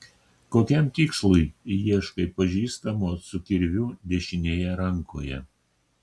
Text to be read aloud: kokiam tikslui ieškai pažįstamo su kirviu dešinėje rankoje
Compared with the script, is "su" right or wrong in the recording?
right